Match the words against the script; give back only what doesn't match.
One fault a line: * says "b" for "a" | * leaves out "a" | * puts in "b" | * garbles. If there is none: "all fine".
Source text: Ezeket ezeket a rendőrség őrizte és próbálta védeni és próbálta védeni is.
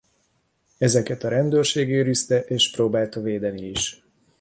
* leaves out "ezeket"
* leaves out "és próbálta védeni"